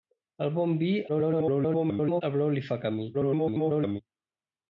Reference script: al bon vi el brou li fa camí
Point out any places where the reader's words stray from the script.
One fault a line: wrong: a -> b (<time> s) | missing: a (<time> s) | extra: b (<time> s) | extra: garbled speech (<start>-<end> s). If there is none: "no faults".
extra: garbled speech (1.1-2.2 s)
extra: garbled speech (3.1-4.0 s)